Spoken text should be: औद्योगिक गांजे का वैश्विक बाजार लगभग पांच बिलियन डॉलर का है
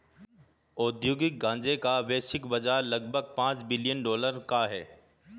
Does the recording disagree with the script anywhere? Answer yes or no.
no